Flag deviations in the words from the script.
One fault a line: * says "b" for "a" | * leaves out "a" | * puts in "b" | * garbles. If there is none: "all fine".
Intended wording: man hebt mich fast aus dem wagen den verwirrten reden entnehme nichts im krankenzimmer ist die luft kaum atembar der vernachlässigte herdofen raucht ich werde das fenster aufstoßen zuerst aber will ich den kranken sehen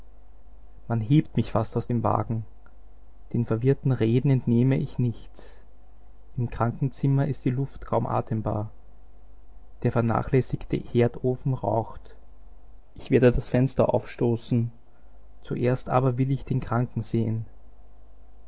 * puts in "ich"